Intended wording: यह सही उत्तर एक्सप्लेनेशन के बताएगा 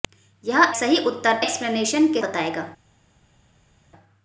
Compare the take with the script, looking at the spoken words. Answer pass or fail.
pass